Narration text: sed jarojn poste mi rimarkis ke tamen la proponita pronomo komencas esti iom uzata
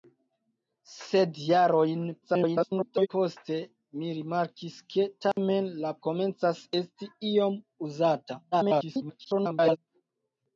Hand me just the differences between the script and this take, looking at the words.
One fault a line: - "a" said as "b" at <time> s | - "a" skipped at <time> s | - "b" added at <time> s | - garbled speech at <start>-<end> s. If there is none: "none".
- garbled speech at 2.2-3.1 s
- "proponita pronomo" skipped at 6.0 s
- garbled speech at 8.5-9.8 s